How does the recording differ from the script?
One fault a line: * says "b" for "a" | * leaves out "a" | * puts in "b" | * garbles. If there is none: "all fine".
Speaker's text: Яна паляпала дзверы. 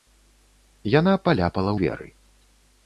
all fine